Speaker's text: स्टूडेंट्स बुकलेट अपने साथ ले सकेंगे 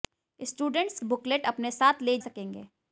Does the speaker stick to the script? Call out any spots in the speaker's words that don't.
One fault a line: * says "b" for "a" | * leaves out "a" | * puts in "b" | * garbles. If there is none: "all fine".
all fine